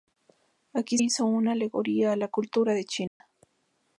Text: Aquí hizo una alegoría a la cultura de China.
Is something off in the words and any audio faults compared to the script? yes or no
yes